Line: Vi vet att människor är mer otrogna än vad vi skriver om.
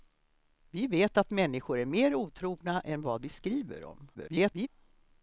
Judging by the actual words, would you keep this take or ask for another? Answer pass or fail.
fail